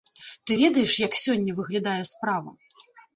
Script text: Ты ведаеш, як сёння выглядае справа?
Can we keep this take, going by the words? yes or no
yes